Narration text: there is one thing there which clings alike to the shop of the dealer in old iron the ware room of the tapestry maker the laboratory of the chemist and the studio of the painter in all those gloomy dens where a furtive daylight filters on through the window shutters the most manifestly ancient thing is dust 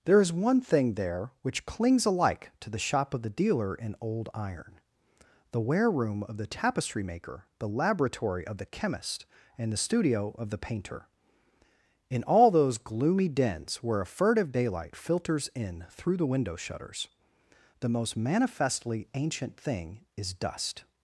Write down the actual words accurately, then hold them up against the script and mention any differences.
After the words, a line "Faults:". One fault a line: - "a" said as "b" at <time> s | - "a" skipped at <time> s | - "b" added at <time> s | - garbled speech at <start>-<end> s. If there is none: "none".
there is one thing there which clings alike to the shop of the dealer in old iron the ware room of the tapestry maker the laboratory of the chemist and the studio of the painter in all those gloomy dens where a furtive daylight filters in through the window shutters the most manifestly ancient thing is dust
Faults:
- "on" said as "in" at 15.5 s